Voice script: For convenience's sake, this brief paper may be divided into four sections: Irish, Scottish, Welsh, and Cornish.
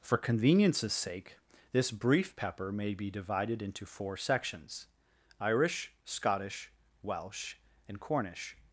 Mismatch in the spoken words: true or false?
true